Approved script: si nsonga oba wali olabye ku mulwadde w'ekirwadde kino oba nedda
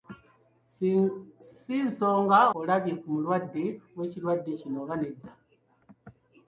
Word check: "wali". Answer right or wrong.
wrong